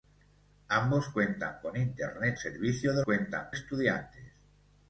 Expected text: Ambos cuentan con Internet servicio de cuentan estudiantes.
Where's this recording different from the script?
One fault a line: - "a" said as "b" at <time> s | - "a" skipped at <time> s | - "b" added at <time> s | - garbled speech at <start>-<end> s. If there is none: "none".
none